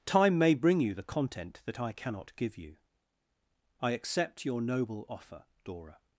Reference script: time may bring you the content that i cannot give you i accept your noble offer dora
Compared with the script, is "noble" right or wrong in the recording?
right